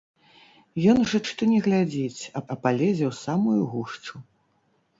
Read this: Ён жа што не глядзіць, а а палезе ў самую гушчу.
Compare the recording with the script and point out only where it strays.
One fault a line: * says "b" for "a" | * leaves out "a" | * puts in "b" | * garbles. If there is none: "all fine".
all fine